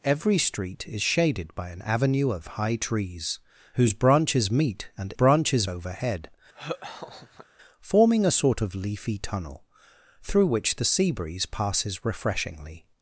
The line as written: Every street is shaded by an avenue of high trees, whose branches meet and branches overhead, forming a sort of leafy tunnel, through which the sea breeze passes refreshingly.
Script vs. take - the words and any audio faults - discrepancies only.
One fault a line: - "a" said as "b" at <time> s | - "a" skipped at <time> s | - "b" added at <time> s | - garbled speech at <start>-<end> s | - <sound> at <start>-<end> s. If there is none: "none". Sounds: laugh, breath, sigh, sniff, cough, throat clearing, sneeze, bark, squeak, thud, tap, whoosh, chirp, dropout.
- laugh at 6.5-7.5 s